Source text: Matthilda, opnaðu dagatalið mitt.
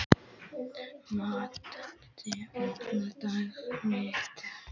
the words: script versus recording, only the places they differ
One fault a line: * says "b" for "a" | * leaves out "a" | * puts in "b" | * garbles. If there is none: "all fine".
all fine